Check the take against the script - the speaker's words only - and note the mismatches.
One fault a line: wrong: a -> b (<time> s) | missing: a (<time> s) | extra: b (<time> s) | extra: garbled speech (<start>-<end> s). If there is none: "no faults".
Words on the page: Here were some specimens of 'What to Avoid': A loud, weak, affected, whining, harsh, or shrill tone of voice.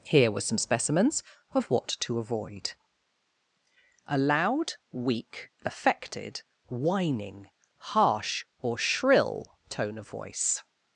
no faults